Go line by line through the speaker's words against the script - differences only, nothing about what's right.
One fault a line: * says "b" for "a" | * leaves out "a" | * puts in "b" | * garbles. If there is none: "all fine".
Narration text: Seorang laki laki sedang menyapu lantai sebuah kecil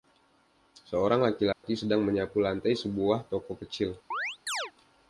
* puts in "toko"